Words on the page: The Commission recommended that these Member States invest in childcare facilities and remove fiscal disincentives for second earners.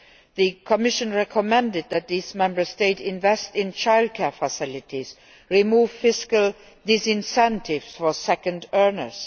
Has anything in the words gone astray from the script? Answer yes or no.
no